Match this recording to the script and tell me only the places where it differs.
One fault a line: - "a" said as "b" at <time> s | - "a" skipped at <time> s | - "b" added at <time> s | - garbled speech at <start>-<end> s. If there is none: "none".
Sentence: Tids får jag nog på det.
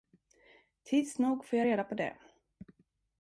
- "nog" added at 1.2 s
- "nog" said as "reda" at 1.6 s